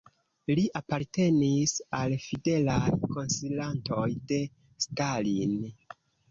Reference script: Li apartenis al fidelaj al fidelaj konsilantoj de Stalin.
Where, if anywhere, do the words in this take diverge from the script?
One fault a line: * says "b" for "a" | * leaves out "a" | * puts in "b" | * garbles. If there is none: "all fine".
* leaves out "al fidelaj"